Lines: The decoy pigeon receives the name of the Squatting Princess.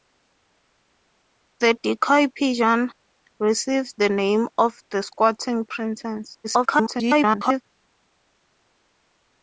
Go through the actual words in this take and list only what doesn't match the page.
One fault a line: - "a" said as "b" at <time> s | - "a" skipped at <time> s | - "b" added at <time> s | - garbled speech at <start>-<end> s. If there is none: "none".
- garbled speech at 6.4-7.6 s